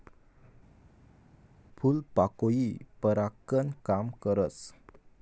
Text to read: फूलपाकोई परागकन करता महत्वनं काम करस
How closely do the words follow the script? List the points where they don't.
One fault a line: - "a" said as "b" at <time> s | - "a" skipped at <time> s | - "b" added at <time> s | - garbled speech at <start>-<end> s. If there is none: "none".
- "करता महत्वनं" skipped at 3.7 s